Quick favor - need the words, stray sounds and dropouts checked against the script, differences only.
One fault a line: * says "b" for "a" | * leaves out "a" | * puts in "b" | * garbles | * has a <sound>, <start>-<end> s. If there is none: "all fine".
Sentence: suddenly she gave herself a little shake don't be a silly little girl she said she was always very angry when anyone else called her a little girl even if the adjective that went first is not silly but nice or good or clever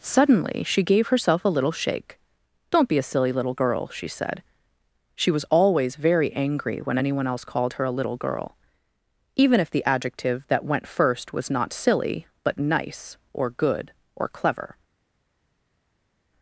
* says "was" for "is"